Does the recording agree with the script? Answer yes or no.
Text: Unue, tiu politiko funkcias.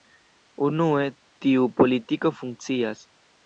yes